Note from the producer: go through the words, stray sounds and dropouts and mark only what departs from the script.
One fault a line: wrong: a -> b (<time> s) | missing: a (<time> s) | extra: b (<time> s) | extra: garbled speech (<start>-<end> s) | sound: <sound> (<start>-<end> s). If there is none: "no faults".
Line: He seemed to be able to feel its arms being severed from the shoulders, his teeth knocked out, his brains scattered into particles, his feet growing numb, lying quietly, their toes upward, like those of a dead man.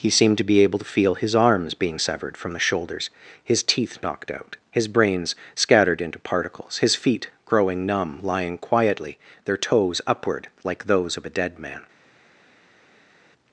wrong: its -> his (1.1 s)